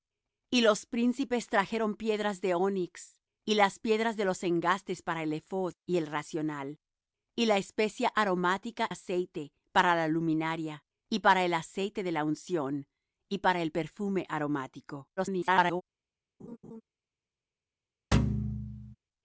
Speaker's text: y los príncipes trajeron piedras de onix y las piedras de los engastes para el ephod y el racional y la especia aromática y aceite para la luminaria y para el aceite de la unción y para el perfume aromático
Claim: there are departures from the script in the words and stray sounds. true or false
true